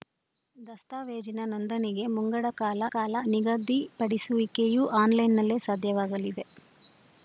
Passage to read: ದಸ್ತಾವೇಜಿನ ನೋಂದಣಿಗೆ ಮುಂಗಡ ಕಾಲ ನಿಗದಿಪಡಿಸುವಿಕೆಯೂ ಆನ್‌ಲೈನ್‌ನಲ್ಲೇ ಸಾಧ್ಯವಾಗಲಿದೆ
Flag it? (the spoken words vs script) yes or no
yes